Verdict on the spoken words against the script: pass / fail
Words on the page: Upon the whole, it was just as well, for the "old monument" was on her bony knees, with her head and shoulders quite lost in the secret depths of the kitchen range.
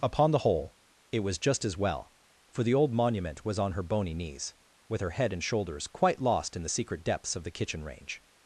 pass